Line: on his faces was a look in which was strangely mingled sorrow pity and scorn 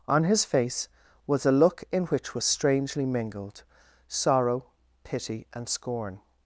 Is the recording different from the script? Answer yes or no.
yes